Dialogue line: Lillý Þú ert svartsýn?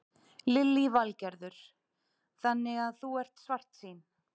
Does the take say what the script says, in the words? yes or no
no